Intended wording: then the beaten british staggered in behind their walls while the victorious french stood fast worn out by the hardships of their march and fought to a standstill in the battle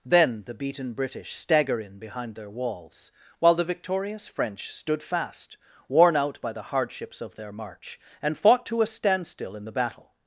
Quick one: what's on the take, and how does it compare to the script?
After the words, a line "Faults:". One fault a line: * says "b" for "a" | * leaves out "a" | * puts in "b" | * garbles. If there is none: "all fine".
then the beaten british stagger in behind their walls while the victorious french stood fast worn out by the hardships of their march and fought to a standstill in the battle
Faults:
* says "stagger" for "staggered"